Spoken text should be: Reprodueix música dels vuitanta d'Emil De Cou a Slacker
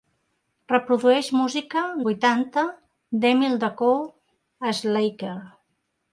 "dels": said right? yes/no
no